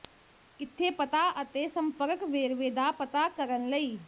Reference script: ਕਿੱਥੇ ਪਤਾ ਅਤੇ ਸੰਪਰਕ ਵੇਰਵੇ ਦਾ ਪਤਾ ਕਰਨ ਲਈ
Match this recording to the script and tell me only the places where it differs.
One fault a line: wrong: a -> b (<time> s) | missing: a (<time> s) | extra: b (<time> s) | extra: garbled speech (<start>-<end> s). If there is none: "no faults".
no faults